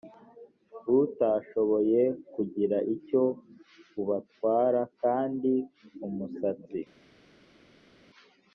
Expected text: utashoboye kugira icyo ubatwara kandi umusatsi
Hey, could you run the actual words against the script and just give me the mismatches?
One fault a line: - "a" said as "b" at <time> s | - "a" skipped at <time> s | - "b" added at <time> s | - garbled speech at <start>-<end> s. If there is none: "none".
none